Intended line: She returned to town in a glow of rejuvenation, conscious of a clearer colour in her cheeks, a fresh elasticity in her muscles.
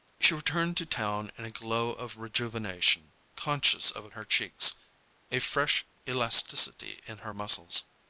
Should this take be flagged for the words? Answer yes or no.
yes